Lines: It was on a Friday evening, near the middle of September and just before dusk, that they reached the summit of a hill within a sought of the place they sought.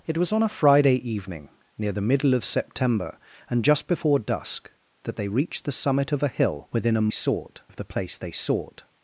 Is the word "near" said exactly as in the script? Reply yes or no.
yes